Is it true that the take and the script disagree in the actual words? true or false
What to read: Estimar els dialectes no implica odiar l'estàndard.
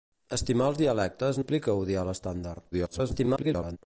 true